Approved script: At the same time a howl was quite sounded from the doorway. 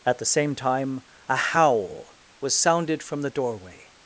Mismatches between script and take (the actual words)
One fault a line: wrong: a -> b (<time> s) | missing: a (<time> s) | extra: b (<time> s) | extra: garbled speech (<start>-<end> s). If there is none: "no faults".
missing: quite (2.6 s)